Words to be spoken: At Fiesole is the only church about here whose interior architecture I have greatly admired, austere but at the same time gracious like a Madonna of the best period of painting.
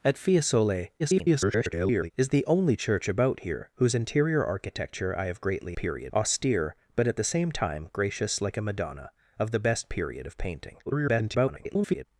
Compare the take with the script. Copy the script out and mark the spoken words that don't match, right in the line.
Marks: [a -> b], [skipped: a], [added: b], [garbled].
At Fiesole [garbled] is the only church about here whose interior architecture I have greatly [admired, -> period] austere but at the same time gracious like a Madonna of the best period of painting. [garbled]